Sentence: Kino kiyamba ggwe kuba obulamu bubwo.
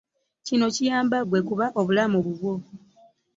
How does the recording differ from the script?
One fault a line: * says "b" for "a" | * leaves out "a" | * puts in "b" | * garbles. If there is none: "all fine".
all fine